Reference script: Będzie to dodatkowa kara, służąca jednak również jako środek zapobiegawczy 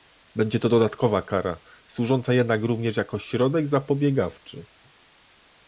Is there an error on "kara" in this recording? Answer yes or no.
no